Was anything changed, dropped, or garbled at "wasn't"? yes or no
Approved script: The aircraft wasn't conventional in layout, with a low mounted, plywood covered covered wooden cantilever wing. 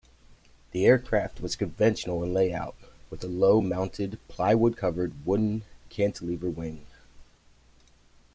yes